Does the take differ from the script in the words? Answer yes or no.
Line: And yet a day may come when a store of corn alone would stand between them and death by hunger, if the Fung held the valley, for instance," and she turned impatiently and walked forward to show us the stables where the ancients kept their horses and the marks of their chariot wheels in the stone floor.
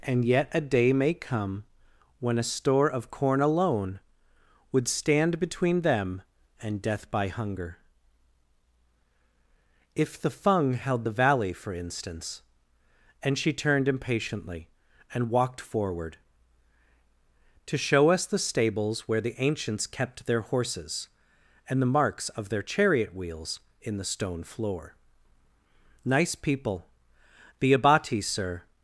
yes